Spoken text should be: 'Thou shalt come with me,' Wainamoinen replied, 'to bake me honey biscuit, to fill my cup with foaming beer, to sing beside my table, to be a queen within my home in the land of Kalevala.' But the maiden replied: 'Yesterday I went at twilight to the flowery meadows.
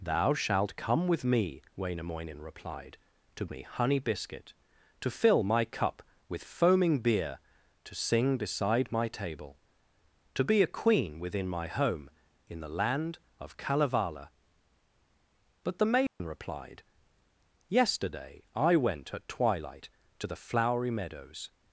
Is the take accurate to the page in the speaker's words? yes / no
no